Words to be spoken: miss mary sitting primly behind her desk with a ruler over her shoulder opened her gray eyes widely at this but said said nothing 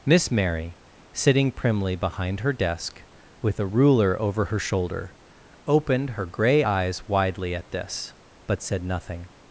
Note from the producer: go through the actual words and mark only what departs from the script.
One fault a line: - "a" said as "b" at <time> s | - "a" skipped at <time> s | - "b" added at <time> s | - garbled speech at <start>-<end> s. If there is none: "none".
- "said" skipped at 8.8 s